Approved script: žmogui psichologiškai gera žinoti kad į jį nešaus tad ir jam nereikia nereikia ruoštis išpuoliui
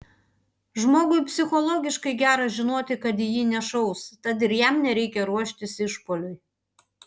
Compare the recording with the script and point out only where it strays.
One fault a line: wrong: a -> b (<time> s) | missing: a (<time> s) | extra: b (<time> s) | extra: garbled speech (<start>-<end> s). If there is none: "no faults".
missing: nereikia (5.3 s)